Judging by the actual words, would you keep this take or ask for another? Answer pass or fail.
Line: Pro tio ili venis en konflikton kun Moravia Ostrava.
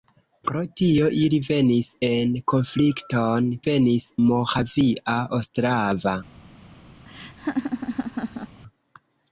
fail